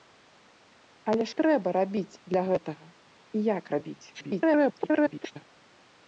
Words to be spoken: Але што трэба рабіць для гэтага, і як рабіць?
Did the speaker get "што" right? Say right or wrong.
wrong